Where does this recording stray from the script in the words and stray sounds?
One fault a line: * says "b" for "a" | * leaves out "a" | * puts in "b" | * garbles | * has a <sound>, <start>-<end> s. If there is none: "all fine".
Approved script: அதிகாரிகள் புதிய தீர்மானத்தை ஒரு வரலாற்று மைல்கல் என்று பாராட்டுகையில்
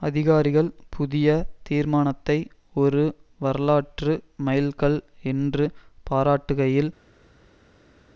all fine